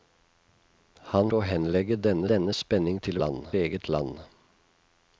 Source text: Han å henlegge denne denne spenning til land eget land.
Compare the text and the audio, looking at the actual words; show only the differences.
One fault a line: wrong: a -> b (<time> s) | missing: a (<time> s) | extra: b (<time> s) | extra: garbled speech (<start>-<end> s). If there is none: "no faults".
no faults